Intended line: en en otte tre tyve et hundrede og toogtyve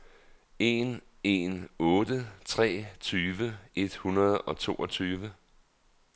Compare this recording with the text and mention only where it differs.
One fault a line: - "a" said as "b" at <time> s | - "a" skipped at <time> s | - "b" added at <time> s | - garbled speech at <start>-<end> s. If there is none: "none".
none